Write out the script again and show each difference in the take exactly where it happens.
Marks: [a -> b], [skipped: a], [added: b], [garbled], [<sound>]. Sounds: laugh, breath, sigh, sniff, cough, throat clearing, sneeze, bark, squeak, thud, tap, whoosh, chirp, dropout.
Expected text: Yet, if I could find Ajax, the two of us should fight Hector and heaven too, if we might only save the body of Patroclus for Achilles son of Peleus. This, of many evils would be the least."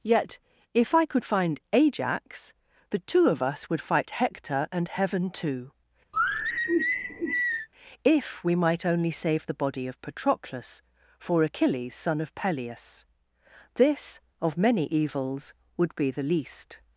Yet, if I could find Ajax, the two of us [should -> would] fight Hector and heaven too, [sigh] if we might only save the body of Patroclus for Achilles son of Peleus. This, of many evils would be the least."